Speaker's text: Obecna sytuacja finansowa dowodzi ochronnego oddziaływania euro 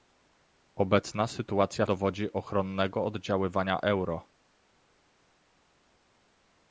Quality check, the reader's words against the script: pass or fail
fail